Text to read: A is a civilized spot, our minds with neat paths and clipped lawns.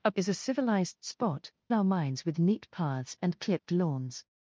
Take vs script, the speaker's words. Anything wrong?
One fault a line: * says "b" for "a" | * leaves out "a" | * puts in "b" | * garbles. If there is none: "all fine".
all fine